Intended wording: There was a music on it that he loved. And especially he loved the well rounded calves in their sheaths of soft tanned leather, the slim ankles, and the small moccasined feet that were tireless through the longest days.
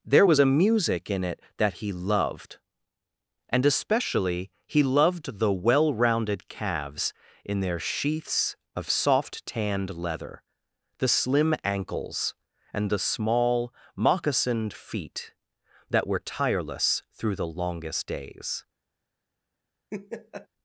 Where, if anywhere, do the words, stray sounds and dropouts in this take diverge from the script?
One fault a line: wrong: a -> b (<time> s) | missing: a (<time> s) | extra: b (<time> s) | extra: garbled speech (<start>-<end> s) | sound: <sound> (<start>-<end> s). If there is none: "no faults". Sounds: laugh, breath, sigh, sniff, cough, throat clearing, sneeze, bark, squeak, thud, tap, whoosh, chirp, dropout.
wrong: on -> in (1.1 s)
sound: laugh (19.9-20.5 s)